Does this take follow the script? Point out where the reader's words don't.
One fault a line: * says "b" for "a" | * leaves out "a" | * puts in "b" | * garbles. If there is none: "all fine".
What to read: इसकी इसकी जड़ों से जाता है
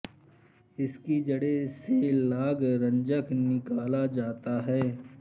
* leaves out "इसकी"
* puts in "लाग रंजक निकाला"